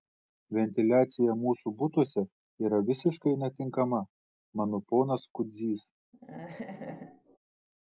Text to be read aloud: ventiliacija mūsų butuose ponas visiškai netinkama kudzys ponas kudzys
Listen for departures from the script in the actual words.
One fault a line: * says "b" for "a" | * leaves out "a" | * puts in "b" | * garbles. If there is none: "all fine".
* says "yra" for "ponas"
* says "mano" for "kudzys"